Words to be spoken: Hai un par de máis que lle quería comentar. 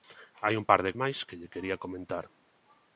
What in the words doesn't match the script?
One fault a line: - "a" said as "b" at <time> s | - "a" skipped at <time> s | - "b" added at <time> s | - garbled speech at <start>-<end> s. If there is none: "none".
none